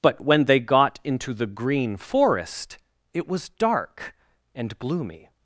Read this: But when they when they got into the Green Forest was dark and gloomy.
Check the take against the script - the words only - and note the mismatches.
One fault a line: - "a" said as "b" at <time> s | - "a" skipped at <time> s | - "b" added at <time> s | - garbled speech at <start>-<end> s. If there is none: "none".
- "when they" skipped at 0.6 s
- "it" added at 3.1 s